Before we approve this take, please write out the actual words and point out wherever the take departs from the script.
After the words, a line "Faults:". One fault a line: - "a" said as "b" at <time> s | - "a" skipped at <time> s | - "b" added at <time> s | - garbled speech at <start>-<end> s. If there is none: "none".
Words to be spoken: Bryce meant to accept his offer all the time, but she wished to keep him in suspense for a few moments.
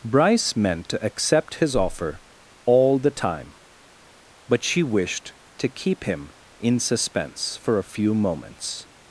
Bryce meant to accept his offer all the time, but she wished to keep him in suspense for a few moments.
Faults:
none